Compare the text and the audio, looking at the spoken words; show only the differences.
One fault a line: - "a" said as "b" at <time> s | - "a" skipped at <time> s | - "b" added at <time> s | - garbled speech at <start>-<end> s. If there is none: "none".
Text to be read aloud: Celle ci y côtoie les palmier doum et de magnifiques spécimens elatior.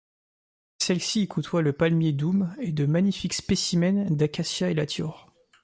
- "les" said as "le" at 1.6 s
- "d'Acacia" added at 4.1 s